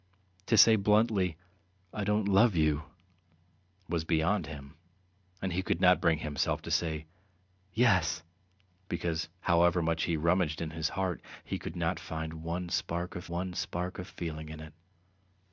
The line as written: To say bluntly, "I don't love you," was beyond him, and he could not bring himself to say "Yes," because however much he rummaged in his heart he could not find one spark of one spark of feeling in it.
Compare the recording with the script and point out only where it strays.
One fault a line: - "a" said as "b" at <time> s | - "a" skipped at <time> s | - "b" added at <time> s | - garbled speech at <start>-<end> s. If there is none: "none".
none